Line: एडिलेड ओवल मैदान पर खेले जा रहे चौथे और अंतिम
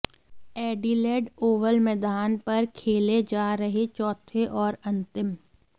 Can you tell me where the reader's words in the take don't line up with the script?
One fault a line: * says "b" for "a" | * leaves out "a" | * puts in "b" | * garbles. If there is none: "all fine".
all fine